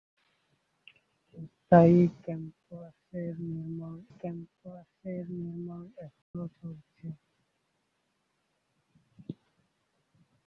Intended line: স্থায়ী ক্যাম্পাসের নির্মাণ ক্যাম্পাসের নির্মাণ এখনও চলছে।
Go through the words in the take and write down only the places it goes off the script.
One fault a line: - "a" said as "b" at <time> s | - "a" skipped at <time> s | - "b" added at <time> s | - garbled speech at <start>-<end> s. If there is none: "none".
none